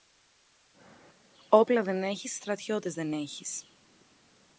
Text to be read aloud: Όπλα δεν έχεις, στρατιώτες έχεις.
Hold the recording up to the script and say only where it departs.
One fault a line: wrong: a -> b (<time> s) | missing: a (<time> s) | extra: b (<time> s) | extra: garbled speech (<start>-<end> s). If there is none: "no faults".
extra: δεν (2.9 s)